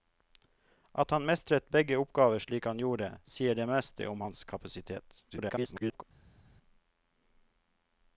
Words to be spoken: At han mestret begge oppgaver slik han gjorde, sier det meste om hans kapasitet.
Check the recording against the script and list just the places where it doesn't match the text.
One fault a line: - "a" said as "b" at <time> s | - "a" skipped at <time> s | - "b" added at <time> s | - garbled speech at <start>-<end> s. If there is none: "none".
- garbled speech at 5.3-6.0 s